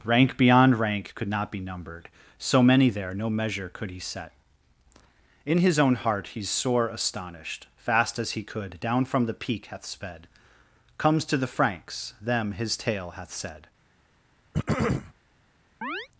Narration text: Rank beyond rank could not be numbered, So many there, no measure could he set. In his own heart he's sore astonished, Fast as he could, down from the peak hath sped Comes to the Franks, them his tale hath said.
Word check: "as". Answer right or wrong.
right